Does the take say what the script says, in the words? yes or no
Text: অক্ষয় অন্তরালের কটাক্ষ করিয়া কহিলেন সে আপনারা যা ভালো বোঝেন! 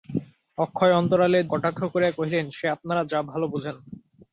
yes